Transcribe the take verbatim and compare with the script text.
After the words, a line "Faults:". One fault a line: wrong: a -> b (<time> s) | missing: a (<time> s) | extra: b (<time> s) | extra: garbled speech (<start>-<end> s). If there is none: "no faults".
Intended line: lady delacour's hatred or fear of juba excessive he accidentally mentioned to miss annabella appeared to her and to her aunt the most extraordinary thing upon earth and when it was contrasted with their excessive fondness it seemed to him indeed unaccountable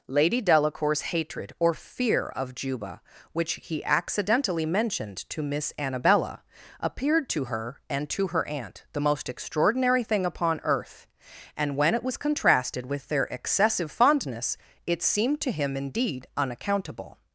lady delacour's hatred or fear of juba which he accidentally mentioned to miss annabella appeared to her and to her aunt the most extraordinary thing upon earth and when it was contrasted with their excessive fondness it seemed to him indeed unaccountable
Faults:
wrong: excessive -> which (3.3 s)